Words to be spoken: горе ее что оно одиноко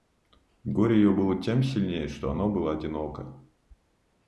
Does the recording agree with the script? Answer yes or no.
no